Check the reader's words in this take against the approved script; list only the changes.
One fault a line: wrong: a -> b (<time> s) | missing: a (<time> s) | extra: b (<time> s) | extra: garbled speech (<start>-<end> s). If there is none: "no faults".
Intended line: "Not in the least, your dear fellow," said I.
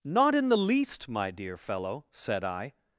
wrong: your -> my (1.1 s)